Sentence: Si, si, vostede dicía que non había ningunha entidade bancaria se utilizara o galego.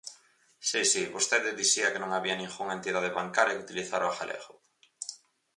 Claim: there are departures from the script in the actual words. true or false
true